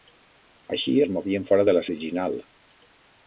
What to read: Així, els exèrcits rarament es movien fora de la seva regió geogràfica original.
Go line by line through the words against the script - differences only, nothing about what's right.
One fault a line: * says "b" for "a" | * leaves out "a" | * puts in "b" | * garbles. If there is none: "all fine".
* leaves out "els exèrcits rarament"
* leaves out "seva regió geogràfica"